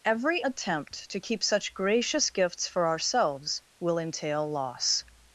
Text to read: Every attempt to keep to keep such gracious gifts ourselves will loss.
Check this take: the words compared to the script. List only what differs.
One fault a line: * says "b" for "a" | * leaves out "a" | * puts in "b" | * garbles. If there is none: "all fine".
* leaves out "to keep"
* puts in "for"
* puts in "entail"